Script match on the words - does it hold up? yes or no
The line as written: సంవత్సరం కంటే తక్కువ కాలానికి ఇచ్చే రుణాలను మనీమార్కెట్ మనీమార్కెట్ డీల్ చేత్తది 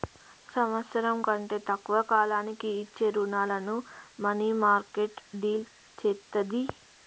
no